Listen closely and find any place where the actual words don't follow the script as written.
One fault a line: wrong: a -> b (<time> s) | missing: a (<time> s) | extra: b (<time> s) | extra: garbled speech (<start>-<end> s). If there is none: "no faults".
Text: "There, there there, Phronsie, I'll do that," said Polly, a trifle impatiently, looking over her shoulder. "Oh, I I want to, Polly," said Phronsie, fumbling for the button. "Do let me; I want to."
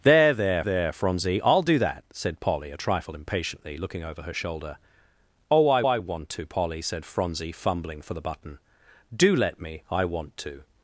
no faults